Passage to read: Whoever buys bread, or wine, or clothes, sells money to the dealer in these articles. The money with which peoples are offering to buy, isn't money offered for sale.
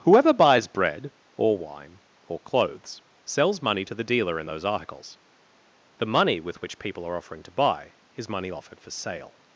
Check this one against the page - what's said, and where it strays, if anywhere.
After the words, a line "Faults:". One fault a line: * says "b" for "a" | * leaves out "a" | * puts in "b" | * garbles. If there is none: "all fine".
Whoever buys bread, or wine, or clothes, sells money to the dealer in those articles. The money with which people are offering to buy, is money offered for sale.
Faults:
* says "those" for "these"
* says "people" for "peoples"
* says "is" for "isn't"